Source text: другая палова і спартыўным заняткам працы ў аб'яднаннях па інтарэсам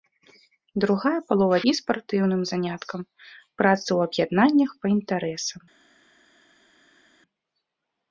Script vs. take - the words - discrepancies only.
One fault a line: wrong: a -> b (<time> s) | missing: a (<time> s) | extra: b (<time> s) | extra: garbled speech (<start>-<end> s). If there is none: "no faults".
no faults